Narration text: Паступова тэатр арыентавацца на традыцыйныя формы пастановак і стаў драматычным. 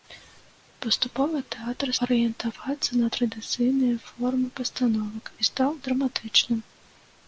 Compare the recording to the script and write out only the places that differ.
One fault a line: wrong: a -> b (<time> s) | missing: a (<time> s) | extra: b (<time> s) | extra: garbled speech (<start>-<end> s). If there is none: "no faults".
no faults